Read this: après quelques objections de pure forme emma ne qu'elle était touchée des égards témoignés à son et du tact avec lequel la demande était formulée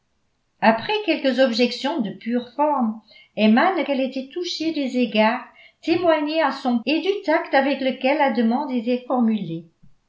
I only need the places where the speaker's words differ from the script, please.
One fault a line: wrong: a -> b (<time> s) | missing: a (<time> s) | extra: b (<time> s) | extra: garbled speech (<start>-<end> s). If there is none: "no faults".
no faults